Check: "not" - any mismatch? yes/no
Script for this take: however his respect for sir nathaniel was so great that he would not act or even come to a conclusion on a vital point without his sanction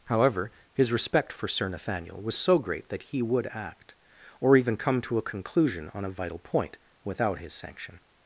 yes